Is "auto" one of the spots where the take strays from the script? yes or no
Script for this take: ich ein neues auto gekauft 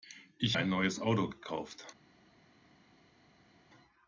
no